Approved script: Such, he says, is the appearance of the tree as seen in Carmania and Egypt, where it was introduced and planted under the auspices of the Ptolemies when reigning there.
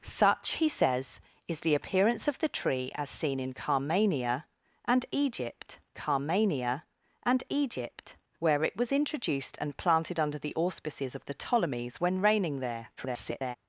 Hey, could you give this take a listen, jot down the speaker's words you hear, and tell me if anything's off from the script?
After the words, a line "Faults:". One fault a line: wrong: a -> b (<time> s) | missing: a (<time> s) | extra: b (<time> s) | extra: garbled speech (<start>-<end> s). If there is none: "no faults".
Such, he says, is the appearance of the tree as seen in Carmania and Egypt Carmania and Egypt, where it was introduced and planted under the auspices of the Ptolemies when reigning there. [garbled]
Faults:
extra: Carmania and Egypt (5.9 s)
extra: garbled speech (13.0-13.6 s)